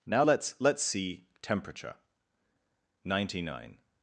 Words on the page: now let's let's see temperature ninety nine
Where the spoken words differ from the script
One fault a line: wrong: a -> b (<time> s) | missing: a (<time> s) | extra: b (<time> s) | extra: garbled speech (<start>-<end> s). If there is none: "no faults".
no faults